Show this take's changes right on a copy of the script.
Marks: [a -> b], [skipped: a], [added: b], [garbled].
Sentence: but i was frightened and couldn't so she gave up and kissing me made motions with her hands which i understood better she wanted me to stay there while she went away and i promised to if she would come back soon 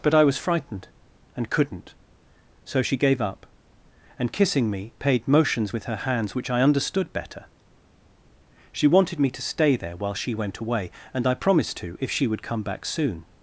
but i was frightened and couldn't so she gave up and kissing me [made -> paid] motions with her hands which i understood better she wanted me to stay there while she went away and i promised to if she would come back soon